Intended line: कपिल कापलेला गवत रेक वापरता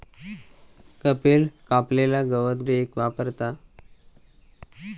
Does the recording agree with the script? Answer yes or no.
yes